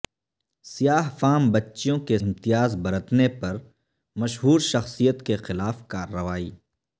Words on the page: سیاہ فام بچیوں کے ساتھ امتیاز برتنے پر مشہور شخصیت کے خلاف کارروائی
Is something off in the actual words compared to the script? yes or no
yes